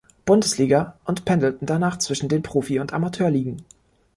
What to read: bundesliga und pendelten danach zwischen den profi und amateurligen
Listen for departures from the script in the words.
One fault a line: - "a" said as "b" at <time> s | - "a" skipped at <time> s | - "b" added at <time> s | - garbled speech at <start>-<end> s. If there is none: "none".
none